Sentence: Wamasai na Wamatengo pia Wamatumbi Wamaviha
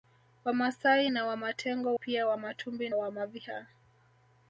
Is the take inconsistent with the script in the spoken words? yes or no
no